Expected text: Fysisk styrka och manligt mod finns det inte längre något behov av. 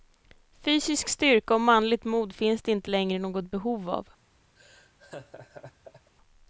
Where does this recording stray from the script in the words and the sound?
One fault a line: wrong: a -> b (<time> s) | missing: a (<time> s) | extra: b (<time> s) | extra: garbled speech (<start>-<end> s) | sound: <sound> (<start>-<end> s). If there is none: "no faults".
sound: laugh (4.6-6.1 s)